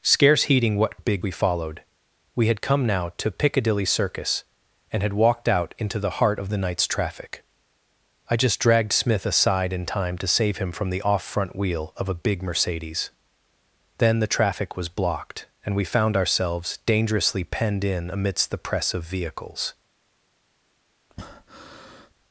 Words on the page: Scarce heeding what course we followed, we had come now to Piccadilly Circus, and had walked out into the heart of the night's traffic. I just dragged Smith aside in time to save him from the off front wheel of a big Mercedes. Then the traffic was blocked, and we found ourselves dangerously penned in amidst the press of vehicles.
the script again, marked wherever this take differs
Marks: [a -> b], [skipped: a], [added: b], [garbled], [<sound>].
Scarce heeding what [course -> big] we followed, we had come now to Piccadilly Circus, and had walked out into the heart of the night's traffic. I just dragged Smith aside in time to save him from the off front wheel of a big Mercedes. Then the traffic was blocked, and we found ourselves dangerously penned in amidst the press of vehicles. [breath]